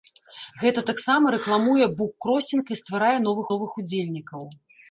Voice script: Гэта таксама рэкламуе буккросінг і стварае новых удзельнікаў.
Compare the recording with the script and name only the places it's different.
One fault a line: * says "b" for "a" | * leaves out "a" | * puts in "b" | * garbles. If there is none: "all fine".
* puts in "новых"